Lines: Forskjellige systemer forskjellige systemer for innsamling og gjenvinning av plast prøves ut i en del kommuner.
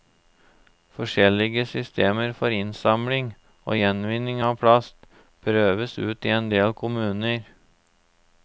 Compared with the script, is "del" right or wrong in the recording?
right